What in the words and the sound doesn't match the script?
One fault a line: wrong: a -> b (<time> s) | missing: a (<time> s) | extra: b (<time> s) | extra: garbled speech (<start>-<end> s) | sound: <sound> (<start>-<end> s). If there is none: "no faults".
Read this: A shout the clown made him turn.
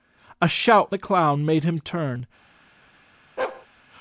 sound: bark (3.4-3.7 s)